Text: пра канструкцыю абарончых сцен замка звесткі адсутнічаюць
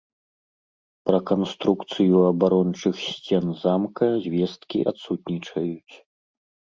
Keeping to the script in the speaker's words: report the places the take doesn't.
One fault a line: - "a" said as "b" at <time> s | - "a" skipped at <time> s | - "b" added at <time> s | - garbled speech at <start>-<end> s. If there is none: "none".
none